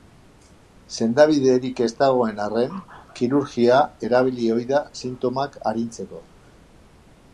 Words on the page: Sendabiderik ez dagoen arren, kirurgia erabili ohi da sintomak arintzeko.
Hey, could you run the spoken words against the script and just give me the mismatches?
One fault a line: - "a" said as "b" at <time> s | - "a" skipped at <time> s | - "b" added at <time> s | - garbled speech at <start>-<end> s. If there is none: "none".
none